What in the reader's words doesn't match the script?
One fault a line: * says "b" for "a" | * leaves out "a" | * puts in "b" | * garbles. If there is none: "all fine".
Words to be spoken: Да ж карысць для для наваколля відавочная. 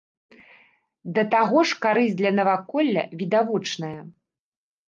* puts in "таго"
* leaves out "для"